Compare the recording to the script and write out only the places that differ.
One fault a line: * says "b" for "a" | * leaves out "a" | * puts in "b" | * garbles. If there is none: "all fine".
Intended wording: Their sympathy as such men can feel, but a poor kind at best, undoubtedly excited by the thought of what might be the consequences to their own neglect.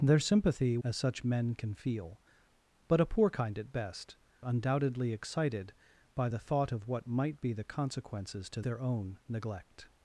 all fine